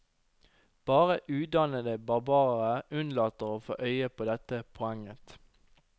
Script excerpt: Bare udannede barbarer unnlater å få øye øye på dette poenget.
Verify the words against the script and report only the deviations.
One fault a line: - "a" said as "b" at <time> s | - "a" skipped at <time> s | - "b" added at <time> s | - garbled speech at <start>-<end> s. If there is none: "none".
- "øye" skipped at 4.1 s